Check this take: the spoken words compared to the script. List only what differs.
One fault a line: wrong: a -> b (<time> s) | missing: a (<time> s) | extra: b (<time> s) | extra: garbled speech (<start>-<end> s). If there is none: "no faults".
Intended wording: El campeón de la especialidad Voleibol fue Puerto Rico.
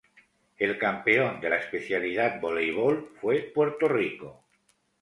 no faults